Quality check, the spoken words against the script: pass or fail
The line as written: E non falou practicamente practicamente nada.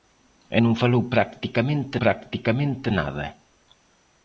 pass